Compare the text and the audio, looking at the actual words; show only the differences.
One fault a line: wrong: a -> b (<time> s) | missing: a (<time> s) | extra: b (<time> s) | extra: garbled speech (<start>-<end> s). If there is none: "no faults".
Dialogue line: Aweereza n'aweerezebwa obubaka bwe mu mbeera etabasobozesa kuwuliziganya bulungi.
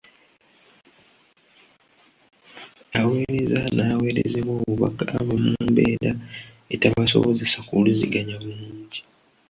no faults